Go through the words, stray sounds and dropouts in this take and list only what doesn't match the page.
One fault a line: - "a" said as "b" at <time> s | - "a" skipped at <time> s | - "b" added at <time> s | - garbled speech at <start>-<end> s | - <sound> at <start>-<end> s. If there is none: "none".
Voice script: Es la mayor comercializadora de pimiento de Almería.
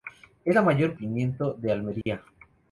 - "comercializadora de" skipped at 0.9 s
- dropout at 2.0-2.1 s